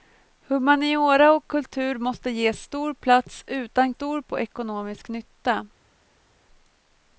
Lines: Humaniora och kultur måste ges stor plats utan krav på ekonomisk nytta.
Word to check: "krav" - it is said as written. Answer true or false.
false